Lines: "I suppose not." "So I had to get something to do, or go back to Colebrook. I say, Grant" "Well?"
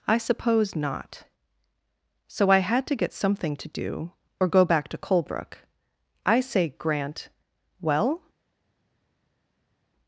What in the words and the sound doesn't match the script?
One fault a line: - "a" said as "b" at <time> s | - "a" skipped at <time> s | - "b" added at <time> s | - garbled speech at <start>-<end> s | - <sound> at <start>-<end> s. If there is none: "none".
none